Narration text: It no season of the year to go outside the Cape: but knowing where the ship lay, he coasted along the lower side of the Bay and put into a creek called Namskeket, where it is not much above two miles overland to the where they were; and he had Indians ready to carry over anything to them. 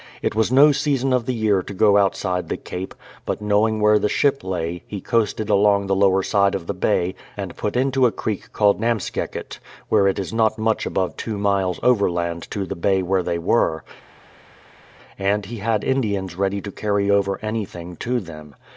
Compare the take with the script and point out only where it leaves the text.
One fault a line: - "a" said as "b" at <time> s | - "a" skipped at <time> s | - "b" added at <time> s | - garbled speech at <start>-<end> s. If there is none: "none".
- "was" added at 0.3 s
- "bay" added at 12.8 s